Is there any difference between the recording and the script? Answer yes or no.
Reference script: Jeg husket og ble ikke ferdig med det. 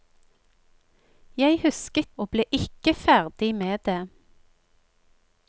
no